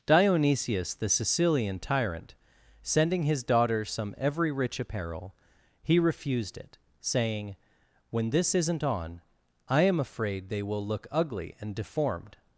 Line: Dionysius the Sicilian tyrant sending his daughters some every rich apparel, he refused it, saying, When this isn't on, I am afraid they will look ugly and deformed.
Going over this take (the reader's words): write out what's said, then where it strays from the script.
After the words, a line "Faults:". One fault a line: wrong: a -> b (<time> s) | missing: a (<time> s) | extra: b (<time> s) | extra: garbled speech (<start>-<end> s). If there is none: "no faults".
Dionysius the Sicilian tyrant sending his daughters some every rich apparel, he refused it, saying, When this isn't on, I am afraid they will look ugly and deformed.
Faults:
no faults